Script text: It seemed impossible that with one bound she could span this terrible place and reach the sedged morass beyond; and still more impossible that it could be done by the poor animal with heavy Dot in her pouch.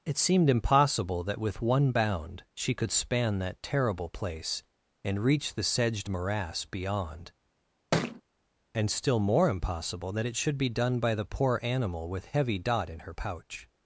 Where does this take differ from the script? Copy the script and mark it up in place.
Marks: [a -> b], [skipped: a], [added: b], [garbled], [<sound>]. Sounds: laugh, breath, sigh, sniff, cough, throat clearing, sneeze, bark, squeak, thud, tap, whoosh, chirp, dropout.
It seemed impossible that with one bound she could span [this -> that] terrible place and reach the sedged morass beyond; [thud] and still more impossible that it [could -> should] be done by the poor animal with heavy Dot in her pouch.